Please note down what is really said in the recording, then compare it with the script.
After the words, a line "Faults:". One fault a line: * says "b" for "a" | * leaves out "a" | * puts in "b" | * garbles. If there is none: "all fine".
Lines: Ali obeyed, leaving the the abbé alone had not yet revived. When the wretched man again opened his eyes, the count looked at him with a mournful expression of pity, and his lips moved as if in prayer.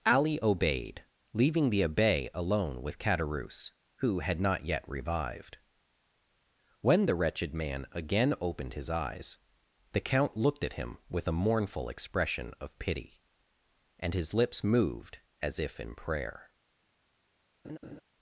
Ali obeyed, leaving the abbé alone with Caderousse, who had not yet revived. When the wretched man again opened his eyes, the count looked at him with a mournful expression of pity, and his lips moved as if in prayer.
Faults:
* leaves out "the"
* puts in "with Caderousse who"